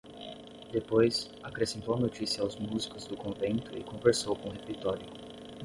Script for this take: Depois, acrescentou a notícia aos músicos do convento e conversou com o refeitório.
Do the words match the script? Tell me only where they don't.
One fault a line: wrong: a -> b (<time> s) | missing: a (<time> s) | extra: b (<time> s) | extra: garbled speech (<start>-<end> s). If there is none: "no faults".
no faults